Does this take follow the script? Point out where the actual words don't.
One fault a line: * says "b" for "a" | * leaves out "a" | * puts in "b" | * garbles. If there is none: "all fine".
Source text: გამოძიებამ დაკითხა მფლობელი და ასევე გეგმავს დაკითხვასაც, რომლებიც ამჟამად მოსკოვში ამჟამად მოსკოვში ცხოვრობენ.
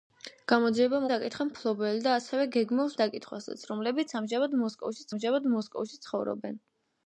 all fine